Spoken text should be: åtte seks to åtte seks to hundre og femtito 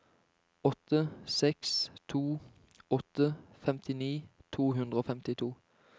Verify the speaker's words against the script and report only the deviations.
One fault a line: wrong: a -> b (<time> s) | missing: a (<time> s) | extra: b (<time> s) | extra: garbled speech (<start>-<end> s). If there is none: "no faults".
wrong: seks -> femtini (3.5 s)